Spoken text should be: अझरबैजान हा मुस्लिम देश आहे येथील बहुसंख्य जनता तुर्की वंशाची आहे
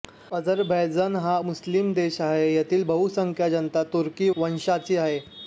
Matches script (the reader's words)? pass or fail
pass